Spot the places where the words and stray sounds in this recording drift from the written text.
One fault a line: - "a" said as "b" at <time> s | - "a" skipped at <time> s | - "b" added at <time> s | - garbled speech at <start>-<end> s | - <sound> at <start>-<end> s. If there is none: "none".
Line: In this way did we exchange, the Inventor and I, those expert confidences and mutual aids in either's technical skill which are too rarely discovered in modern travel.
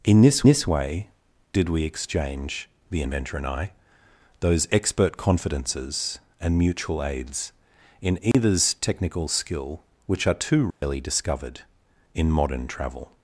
- "this" added at 0.5 s
- dropout at 8.3-8.3 s
- dropout at 10.7-10.8 s